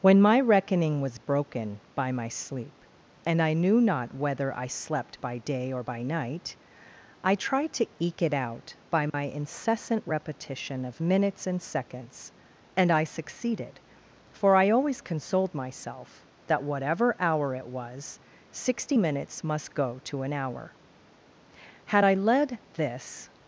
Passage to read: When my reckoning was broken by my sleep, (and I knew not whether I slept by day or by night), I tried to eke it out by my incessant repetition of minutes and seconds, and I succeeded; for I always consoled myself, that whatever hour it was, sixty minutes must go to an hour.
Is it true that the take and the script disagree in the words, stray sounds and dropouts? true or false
true